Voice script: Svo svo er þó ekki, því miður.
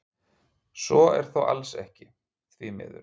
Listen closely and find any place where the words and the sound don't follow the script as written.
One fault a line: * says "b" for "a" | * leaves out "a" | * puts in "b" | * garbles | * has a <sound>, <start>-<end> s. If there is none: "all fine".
* leaves out "svo"
* puts in "alls"